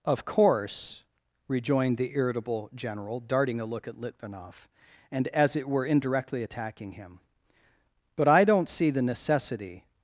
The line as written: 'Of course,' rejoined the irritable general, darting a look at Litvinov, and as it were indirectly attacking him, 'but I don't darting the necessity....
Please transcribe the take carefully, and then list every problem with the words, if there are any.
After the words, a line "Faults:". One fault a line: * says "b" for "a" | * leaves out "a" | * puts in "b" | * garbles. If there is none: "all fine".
'Of course,' rejoined the irritable general, darting a look at Litvinov, and as it were indirectly attacking him, 'but I don't see the necessity....
Faults:
* says "see" for "darting"